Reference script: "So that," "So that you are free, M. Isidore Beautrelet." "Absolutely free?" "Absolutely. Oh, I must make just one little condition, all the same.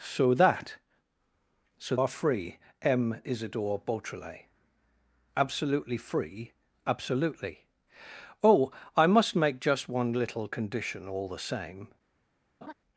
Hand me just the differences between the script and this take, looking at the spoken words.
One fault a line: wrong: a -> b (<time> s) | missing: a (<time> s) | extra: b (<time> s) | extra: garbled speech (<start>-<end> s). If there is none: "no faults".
missing: that you (1.9 s)